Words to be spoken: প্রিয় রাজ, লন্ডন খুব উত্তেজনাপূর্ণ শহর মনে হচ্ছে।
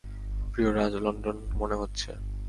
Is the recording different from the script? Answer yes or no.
yes